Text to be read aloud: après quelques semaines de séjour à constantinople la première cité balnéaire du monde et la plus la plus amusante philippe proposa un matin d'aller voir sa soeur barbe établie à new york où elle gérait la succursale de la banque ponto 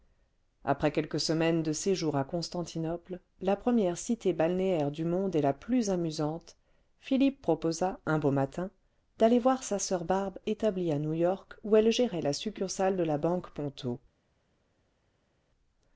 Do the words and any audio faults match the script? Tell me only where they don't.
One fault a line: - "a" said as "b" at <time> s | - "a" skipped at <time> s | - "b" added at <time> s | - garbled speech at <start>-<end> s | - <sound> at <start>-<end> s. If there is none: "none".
- "la plus" skipped at 5.9 s
- "beau" added at 8.2 s